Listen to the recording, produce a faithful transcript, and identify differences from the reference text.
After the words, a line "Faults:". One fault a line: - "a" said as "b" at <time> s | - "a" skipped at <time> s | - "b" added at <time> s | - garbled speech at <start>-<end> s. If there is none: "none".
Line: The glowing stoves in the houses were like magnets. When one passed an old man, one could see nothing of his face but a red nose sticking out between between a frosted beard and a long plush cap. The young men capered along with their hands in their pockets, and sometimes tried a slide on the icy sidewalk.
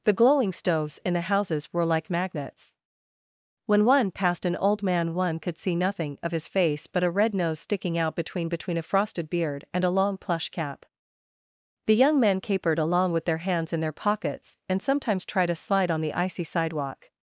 The glowing stoves in the houses were like magnets. When one passed an old man, one could see nothing of his face but a red nose sticking out between between a frosted beard and a long plush cap. The young men capered along with their hands in their pockets, and sometimes tried a slide on the icy sidewalk.
Faults:
none